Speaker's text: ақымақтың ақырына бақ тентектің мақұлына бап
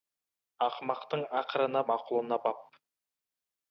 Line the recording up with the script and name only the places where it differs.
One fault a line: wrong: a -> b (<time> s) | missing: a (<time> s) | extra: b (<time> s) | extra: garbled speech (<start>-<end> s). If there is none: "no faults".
missing: бақ тентектің (1.8 s)